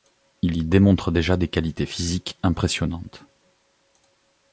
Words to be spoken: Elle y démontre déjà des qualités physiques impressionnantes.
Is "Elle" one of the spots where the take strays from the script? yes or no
yes